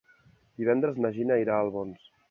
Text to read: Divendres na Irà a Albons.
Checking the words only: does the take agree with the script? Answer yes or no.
no